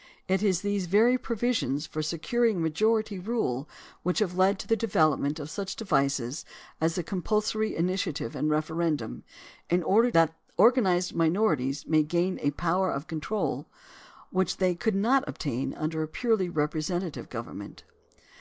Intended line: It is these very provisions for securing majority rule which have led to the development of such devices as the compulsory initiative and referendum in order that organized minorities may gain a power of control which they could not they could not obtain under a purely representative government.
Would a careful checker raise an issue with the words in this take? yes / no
yes